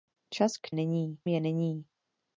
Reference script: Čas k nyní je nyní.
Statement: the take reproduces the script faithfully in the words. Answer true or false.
true